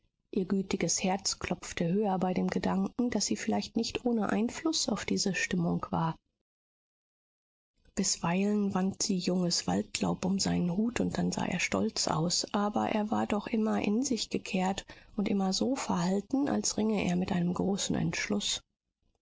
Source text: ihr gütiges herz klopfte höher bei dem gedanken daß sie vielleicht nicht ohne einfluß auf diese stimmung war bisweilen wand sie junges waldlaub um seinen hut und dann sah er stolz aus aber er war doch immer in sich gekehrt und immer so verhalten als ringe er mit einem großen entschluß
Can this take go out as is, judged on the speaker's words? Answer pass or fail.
pass